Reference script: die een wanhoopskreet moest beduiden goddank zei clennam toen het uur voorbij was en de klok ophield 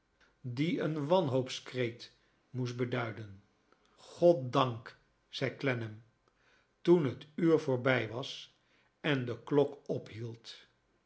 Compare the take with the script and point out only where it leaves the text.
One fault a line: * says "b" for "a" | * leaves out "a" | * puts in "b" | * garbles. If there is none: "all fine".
all fine